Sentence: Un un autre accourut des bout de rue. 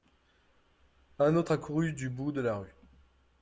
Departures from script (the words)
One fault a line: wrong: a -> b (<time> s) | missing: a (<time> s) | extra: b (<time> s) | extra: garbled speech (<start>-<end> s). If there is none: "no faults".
missing: un (1.4 s)
wrong: des -> du (1.9 s)
extra: la (2.4 s)